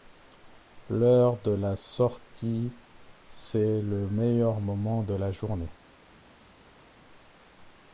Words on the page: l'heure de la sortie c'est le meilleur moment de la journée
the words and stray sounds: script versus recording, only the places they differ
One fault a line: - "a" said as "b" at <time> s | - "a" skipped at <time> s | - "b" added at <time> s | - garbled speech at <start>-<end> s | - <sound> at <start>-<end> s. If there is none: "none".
none